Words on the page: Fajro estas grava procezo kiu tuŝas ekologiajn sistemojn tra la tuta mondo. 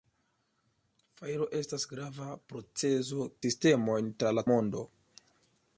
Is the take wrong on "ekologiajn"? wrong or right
wrong